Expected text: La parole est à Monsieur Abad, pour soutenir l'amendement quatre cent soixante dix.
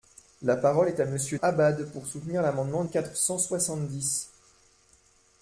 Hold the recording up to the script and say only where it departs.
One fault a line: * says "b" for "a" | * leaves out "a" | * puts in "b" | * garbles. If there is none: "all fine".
all fine